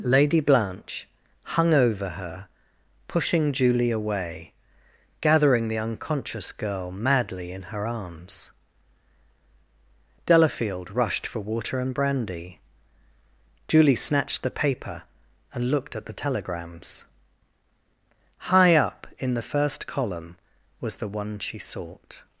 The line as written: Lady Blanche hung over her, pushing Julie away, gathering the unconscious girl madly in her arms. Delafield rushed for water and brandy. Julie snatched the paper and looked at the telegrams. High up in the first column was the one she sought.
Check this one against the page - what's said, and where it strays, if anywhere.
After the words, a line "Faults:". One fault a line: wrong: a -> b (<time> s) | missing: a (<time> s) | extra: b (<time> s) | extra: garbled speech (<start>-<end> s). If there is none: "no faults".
Lady Blanche hung over her, pushing Julie away, gathering the unconscious girl madly in her arms. Delafield rushed for water and brandy. Julie snatched the paper and looked at the telegrams. High up in the first column was the one she sought.
Faults:
no faults